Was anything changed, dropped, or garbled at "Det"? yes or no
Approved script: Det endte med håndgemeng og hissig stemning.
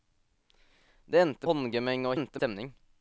no